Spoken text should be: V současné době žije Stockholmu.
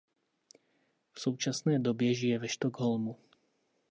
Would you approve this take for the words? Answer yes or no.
no